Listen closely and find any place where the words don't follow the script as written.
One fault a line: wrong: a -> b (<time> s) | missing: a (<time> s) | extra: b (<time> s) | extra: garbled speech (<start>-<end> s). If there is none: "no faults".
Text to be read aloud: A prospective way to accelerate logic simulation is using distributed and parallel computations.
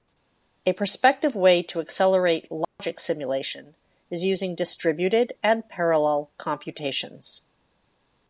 no faults